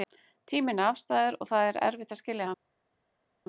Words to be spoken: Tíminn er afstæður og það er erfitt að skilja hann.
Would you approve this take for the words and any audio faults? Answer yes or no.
yes